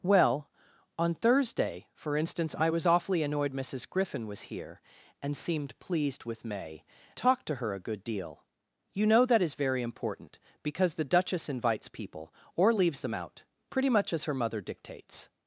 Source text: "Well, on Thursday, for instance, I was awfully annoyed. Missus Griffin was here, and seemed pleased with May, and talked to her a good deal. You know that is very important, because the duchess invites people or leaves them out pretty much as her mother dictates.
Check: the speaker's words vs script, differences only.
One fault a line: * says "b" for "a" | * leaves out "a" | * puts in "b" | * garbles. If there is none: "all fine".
* leaves out "and"